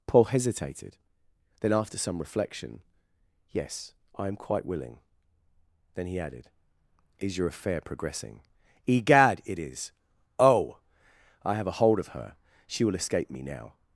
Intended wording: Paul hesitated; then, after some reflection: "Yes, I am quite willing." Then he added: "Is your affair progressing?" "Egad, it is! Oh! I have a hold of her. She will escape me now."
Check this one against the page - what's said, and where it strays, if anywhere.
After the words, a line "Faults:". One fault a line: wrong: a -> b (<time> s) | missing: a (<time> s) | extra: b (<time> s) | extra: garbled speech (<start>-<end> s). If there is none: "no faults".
Paul hesitated; then, after some reflection: "Yes, I am quite willing." Then he added: "Is your affair progressing?" "Egad, it is! Oh! I have a hold of her. She will escape me now."
Faults:
no faults